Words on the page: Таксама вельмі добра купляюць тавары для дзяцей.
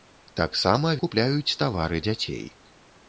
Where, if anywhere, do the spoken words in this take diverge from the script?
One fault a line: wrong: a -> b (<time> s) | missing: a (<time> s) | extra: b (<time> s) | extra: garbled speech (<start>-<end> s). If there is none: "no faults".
missing: вельмі добра (0.9 s)
missing: для (2.0 s)